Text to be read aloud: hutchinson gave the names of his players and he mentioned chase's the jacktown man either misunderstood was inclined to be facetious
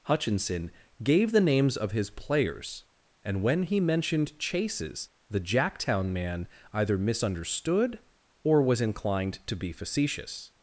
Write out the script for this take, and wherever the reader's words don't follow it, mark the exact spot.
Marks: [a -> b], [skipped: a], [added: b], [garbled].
hutchinson gave the names of his players and [added: when] he mentioned chase's the jacktown man either misunderstood [added: or] was inclined to be facetious